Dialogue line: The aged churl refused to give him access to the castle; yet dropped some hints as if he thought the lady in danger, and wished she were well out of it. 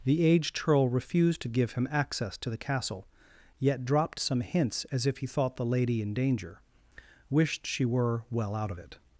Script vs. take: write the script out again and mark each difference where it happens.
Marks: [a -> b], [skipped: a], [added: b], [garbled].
The aged churl refused to give him access to the castle; yet dropped some hints as if he thought the lady in danger, [skipped: and] wished she were well out of it.